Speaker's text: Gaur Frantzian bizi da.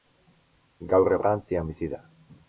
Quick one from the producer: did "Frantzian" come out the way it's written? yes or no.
yes